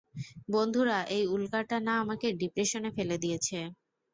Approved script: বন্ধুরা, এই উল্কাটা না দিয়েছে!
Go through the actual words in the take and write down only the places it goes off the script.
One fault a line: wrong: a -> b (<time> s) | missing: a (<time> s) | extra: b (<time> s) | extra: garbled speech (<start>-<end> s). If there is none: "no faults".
extra: আমাকে ডিপ্রেশনে ফেলে (2.0 s)